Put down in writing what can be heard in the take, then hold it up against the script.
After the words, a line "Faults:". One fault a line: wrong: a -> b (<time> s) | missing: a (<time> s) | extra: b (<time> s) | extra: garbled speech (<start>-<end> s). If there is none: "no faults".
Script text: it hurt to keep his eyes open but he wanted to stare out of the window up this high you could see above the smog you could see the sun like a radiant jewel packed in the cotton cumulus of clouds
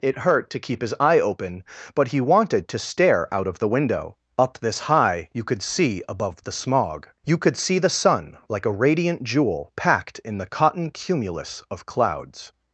it hurt to keep his eye open but he wanted to stare out of the window up this high you could see above the smog you could see the sun like a radiant jewel packed in the cotton cumulus of clouds
Faults:
wrong: eyes -> eye (1.0 s)